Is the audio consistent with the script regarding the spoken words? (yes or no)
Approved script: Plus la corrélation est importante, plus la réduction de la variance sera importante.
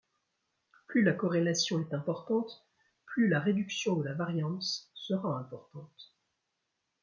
yes